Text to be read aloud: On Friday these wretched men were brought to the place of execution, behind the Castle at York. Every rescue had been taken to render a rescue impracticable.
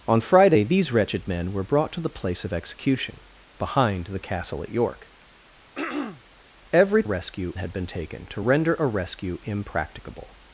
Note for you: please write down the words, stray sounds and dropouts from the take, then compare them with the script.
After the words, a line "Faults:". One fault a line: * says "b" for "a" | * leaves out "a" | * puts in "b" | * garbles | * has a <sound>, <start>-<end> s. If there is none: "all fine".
On Friday these wretched men were brought to the place of execution, behind the Castle at York. Every rescue had been taken to render a rescue impracticable.
Faults:
* has a throat clearing, 5.7-6.2 s